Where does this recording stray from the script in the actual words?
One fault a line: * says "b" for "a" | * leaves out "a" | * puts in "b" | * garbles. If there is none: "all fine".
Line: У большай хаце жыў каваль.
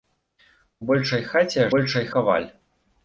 * says "большай" for "жыў"